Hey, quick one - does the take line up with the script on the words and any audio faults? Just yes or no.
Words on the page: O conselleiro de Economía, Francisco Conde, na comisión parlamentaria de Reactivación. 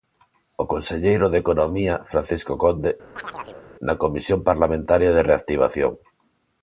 no